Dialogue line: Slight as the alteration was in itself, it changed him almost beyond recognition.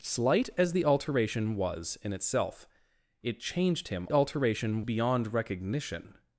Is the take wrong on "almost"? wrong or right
wrong